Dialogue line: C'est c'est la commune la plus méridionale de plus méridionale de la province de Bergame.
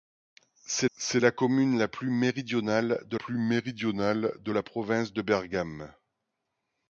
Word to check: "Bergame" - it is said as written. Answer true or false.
true